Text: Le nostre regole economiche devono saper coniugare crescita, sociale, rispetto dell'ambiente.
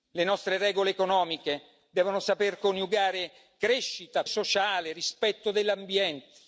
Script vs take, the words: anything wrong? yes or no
no